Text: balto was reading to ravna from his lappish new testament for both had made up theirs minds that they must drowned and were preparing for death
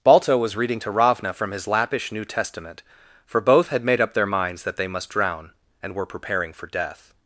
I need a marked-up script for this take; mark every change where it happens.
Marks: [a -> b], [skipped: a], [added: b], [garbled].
balto was reading to ravna from his lappish new testament for both had made up [theirs -> their] minds that they must [drowned -> drown] and were preparing for death